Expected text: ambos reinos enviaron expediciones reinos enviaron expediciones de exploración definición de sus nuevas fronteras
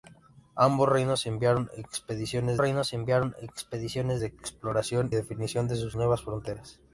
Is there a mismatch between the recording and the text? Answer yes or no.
no